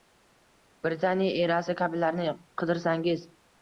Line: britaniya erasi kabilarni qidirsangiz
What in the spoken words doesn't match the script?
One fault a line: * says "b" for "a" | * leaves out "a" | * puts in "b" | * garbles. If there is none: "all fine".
all fine